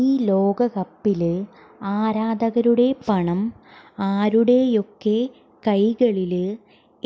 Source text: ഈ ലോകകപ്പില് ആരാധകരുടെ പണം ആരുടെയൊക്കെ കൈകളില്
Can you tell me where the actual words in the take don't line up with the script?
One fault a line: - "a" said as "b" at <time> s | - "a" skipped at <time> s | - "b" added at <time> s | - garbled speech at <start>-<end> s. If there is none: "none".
none